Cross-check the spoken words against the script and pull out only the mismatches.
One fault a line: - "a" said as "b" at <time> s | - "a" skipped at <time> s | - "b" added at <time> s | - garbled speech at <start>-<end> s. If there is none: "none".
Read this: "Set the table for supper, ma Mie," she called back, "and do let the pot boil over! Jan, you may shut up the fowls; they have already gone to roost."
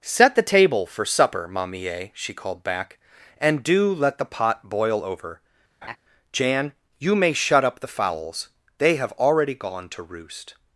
none